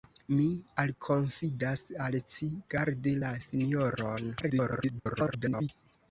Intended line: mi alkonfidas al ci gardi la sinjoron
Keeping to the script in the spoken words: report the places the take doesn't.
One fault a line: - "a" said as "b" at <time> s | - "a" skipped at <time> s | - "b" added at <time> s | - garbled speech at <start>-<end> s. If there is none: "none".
- garbled speech at 4.4-5.7 s